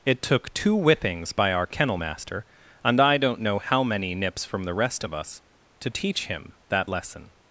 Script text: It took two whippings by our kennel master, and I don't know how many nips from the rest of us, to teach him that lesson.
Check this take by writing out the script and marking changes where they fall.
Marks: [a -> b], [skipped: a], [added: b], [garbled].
It took two whippings by our kennel master, and I don't know how many nips from the rest of us, to teach him that lesson.